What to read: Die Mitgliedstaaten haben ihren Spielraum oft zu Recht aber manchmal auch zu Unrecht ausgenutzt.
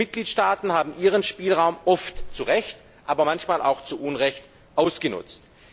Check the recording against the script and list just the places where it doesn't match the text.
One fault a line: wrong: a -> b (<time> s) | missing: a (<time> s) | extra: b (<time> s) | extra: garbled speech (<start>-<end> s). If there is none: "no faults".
no faults